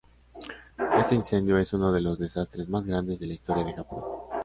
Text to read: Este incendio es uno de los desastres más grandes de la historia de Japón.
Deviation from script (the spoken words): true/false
false